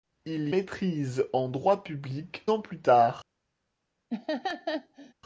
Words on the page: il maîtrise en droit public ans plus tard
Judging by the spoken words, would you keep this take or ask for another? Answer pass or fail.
pass